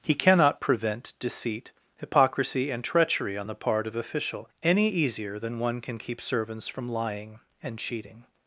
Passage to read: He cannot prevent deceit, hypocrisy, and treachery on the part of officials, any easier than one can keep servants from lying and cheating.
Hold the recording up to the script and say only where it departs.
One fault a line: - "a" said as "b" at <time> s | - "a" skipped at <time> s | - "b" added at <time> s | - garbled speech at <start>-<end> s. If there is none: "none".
- "officials" said as "official" at 3.9 s